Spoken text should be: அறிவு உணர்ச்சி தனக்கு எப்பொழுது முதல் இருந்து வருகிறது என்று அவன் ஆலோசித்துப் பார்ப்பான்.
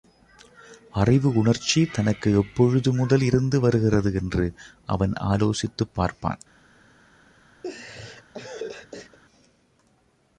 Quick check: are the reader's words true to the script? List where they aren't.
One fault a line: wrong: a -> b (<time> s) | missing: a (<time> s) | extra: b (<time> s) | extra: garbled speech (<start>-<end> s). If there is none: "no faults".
no faults